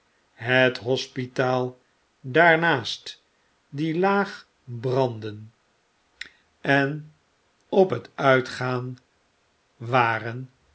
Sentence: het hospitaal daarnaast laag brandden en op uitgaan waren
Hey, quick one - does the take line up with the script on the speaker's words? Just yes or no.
no